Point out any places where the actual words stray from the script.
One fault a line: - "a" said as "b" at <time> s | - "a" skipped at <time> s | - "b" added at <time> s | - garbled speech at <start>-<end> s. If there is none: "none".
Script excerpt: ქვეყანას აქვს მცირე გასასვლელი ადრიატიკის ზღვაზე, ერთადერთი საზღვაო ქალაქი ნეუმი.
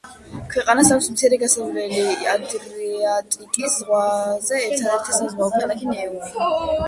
none